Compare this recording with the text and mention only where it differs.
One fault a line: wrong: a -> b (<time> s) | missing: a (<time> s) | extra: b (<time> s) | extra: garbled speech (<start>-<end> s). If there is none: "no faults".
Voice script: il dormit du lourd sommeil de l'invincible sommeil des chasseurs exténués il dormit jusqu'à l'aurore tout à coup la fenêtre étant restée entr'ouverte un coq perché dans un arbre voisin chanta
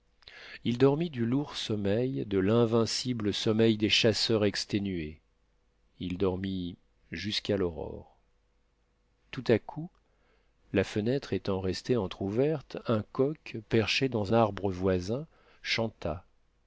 missing: un (14.3 s)